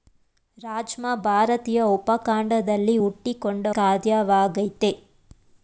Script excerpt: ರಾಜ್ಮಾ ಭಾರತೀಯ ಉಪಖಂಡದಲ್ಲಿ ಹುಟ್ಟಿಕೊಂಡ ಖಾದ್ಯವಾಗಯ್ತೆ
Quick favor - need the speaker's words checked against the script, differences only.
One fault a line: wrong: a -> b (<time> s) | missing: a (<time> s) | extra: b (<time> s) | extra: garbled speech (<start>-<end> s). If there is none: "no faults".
no faults